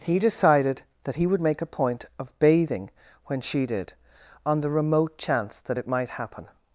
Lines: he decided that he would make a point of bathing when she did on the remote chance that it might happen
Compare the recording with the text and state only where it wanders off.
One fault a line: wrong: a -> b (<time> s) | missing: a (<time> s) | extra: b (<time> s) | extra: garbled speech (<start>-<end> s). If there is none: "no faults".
no faults